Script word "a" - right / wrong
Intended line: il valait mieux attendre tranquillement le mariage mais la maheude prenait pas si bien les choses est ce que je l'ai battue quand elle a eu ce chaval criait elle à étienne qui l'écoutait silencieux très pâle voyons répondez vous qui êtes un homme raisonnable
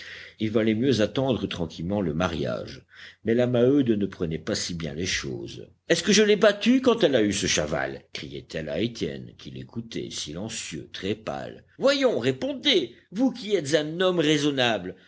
right